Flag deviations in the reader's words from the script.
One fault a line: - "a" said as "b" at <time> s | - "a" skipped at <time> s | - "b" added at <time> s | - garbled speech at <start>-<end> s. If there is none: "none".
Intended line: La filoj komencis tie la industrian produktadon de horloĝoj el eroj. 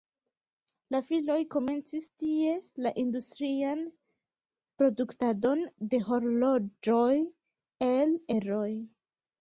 none